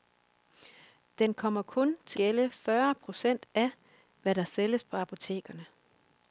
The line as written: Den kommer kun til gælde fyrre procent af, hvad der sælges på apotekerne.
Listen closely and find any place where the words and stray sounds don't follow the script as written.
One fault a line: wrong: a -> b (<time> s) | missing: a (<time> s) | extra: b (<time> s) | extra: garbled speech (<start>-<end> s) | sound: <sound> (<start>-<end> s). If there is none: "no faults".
no faults